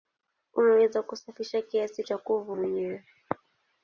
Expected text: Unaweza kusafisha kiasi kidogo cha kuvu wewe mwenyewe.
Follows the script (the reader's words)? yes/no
no